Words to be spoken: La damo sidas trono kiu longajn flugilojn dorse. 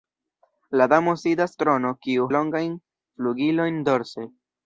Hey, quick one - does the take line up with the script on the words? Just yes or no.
yes